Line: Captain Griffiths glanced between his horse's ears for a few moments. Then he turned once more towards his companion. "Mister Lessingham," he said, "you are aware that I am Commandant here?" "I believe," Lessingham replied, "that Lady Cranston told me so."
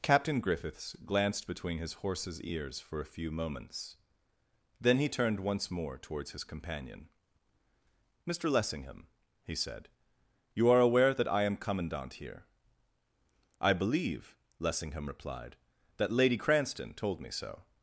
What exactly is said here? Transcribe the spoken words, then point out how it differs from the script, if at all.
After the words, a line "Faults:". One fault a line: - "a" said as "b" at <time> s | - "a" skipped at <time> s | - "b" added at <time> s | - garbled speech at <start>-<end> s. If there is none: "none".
Captain Griffiths glanced between his horse's ears for a few moments. Then he turned once more towards his companion. "Mister Lessingham," he said, "you are aware that I am Commandant here?" "I believe," Lessingham replied, "that Lady Cranston told me so."
Faults:
none